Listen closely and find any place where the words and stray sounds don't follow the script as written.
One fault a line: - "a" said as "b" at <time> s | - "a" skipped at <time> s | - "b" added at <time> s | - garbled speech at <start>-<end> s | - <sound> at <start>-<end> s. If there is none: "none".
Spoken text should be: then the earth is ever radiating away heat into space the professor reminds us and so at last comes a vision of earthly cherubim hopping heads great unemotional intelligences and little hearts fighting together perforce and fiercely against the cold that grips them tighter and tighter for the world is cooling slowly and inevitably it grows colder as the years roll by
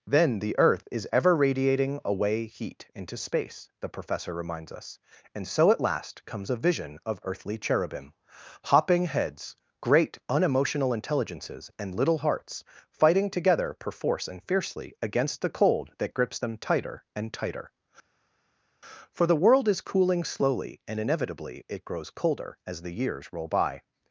none